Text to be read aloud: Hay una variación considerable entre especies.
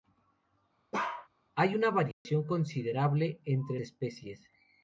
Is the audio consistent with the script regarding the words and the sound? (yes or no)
no